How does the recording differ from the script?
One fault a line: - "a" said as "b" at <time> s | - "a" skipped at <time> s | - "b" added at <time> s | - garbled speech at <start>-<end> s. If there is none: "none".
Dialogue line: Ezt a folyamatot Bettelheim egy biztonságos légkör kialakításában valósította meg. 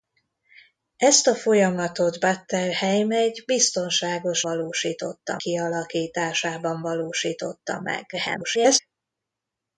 - "légkör" said as "valósította" at 4.4 s
- garbled speech at 8.1-8.8 s